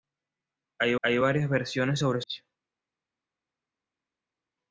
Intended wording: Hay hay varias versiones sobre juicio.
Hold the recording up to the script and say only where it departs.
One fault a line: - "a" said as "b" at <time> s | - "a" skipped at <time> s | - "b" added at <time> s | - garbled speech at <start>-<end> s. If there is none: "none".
none